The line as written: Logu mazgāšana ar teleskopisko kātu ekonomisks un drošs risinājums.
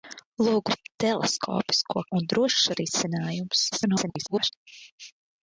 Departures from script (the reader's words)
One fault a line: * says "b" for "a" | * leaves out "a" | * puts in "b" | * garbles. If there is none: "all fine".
* leaves out "mazgāšana"
* leaves out "kātu ekonomisks"
* garbles